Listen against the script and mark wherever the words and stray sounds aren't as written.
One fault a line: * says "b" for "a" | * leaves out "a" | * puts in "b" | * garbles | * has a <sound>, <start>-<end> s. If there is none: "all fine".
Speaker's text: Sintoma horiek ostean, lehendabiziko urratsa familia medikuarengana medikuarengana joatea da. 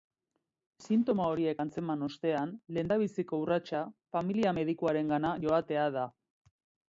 * puts in "antzeman"
* leaves out "medikuarengana"